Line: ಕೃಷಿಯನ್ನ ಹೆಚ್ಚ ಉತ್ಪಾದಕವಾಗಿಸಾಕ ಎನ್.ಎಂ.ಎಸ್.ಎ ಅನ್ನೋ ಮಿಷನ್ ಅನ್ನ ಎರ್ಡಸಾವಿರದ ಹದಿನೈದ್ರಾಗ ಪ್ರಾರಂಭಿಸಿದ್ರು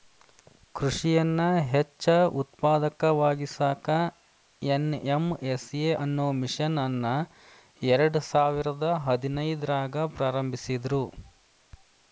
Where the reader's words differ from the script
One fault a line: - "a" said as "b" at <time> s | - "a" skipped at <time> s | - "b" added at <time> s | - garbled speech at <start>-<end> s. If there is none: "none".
none